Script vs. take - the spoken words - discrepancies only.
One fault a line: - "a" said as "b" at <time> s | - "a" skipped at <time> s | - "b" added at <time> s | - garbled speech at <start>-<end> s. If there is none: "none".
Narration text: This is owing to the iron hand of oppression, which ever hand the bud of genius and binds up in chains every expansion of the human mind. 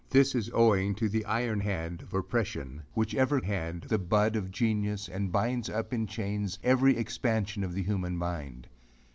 none